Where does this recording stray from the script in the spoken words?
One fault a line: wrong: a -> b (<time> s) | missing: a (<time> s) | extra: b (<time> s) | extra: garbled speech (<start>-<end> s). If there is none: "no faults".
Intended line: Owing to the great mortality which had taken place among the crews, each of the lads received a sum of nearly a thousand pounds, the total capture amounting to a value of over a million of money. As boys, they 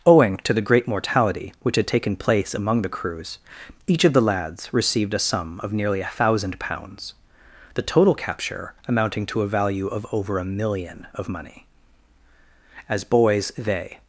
no faults